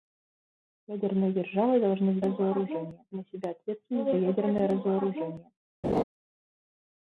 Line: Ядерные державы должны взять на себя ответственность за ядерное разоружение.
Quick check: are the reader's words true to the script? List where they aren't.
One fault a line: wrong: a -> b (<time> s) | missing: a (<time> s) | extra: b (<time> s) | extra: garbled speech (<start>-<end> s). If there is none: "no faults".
wrong: взять -> разоружение (2.2 s)